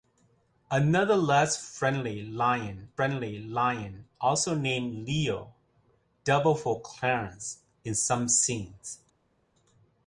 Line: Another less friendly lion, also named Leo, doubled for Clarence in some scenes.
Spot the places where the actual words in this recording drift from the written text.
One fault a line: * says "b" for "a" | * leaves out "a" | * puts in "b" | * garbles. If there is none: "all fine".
* puts in "friendly lion"